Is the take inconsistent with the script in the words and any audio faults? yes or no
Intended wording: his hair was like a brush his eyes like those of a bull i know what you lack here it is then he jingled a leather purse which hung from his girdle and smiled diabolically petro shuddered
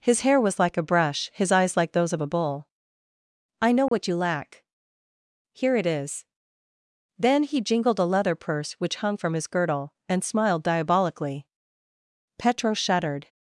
yes